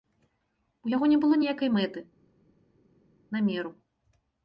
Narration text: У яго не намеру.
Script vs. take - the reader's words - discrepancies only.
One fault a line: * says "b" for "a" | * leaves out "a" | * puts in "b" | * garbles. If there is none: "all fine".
* puts in "было ніякай мэты"